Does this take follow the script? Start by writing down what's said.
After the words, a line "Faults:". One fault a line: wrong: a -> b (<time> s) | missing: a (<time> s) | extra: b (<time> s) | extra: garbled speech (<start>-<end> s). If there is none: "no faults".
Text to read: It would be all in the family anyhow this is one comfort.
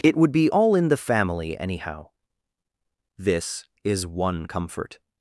It would be all in the family anyhow this is one comfort.
Faults:
no faults